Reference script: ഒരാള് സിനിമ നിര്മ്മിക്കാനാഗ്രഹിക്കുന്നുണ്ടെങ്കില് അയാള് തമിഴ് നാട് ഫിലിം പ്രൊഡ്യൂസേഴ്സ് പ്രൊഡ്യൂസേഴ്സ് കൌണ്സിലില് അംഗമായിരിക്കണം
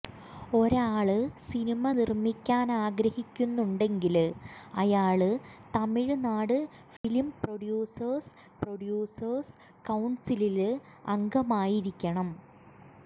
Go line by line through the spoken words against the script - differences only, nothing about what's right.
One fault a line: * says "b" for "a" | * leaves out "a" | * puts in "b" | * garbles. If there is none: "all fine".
all fine